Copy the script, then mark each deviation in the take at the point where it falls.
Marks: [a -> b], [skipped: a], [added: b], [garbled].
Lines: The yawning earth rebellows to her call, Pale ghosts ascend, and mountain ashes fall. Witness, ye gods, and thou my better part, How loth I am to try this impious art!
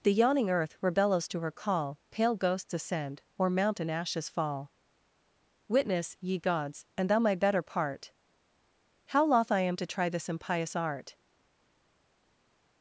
The yawning earth rebellows to her call, Pale ghosts ascend, [and -> or] mountain ashes fall. Witness, ye gods, and thou my better part, How loth I am to try this impious art!